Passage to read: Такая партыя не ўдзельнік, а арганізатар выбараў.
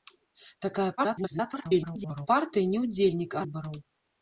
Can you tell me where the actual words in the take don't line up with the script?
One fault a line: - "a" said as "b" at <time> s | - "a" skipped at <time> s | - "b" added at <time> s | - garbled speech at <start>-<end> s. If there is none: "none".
- garbled speech at 1.0-2.3 s
- "арганізатар" skipped at 3.5 s